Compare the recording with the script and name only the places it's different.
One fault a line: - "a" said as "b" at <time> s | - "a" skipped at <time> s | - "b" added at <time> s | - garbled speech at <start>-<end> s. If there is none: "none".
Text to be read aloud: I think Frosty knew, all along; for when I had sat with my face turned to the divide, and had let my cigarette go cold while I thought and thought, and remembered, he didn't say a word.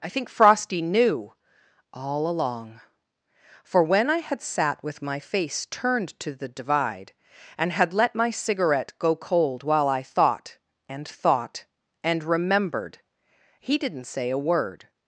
none